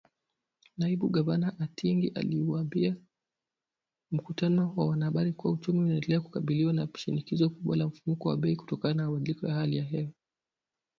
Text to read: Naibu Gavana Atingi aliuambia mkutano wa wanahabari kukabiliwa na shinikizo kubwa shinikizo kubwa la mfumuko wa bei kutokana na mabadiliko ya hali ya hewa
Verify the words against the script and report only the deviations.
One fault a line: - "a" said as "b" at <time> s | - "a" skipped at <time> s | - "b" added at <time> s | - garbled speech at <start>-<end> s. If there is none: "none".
- "kuwa uchumi unaendelea" added at 5.3 s
- "shinikizo kubwa" skipped at 7.8 s